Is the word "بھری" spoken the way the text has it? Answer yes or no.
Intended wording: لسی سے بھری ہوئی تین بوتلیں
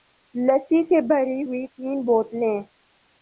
yes